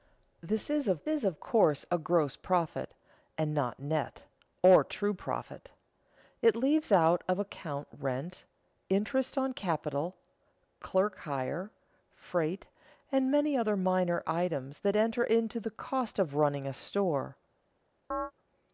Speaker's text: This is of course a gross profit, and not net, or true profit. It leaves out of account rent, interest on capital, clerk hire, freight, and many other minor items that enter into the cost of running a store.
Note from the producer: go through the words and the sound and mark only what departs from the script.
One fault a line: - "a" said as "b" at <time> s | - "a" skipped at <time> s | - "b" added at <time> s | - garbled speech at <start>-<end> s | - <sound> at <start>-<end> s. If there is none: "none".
- "is of" added at 1.1 s
- chirp at 18.1-18.3 s